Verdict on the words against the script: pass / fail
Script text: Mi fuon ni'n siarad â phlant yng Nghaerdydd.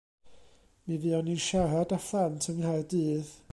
pass